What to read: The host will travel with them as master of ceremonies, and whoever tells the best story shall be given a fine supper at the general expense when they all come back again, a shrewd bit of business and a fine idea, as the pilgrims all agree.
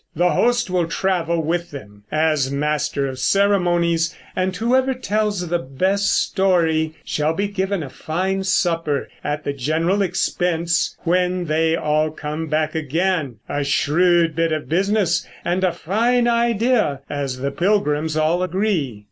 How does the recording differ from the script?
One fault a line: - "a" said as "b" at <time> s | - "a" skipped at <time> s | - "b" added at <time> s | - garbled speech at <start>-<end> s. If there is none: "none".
none